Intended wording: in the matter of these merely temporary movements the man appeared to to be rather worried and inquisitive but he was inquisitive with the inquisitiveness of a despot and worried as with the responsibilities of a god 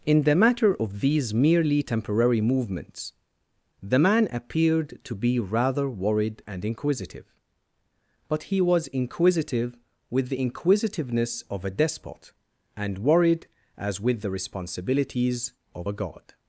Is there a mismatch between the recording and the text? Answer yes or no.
yes